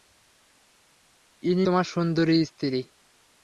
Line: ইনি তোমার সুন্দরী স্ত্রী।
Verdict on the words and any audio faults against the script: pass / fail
pass